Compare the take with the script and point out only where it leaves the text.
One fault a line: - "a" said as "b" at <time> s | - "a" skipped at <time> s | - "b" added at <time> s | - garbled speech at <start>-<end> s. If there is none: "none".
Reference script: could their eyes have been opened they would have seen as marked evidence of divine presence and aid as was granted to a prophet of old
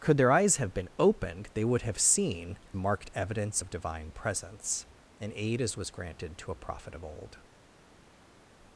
- "as" skipped at 2.6 s